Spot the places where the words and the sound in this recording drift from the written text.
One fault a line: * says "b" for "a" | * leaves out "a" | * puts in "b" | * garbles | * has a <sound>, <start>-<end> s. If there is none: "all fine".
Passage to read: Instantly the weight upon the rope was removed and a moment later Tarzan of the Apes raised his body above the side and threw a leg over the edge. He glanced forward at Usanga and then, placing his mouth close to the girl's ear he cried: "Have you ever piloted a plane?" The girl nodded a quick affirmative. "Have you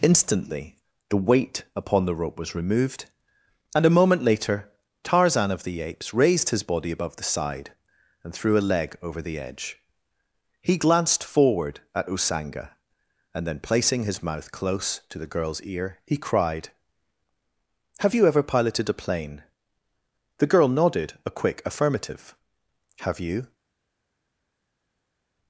all fine